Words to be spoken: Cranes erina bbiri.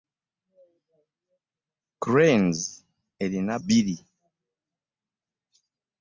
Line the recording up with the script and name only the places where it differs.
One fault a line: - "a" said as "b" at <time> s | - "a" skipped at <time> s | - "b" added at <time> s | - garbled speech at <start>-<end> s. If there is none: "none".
none